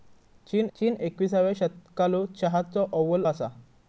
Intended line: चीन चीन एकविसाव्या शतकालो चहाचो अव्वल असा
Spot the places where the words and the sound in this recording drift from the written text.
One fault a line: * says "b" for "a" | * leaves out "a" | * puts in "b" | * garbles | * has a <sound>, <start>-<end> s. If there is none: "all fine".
all fine